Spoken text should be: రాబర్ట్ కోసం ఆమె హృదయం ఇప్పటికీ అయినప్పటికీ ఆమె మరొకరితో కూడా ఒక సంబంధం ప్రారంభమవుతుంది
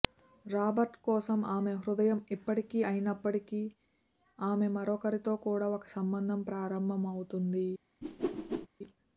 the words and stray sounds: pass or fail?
fail